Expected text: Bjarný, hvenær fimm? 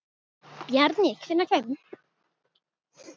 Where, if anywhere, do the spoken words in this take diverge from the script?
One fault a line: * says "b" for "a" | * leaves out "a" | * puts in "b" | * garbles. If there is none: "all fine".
all fine